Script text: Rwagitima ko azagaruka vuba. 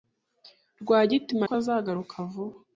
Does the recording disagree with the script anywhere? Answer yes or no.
no